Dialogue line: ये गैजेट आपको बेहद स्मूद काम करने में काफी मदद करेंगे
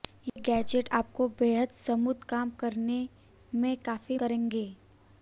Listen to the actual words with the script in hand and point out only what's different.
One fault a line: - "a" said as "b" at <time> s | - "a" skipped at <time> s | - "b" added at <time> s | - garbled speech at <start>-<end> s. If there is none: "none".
- "मदद" skipped at 4.2 s